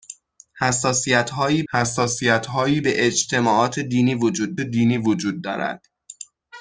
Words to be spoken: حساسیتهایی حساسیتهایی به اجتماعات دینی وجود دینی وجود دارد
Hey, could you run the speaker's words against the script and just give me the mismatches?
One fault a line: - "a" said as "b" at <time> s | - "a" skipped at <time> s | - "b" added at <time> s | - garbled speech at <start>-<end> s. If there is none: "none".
none